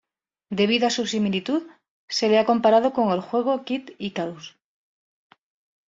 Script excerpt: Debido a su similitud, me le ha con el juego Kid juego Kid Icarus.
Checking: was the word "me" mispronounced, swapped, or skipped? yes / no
yes